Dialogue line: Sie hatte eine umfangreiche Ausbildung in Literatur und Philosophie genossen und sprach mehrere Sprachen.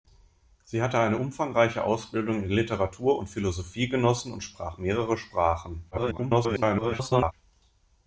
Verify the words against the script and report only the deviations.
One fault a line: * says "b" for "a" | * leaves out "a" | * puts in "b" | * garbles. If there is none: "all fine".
* garbles